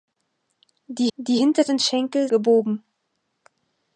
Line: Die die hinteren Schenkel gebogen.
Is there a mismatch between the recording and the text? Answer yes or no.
no